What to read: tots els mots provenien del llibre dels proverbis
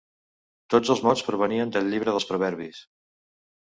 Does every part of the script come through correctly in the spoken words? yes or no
yes